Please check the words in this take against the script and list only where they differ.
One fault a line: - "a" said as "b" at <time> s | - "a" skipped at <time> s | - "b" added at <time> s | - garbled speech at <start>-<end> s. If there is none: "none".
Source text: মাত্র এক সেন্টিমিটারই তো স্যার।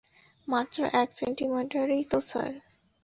none